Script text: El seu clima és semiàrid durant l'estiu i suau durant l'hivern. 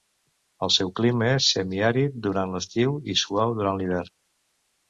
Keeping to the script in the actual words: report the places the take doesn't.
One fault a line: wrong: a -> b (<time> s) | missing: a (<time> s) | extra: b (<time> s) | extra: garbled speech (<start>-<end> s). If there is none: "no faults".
no faults